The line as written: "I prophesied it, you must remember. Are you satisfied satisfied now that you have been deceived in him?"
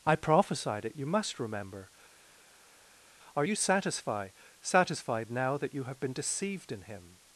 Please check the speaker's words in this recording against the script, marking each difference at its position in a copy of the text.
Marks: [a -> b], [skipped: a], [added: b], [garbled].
"I prophesied it, you must remember. Are you satisfied satisfied now that you have been deceived in him?"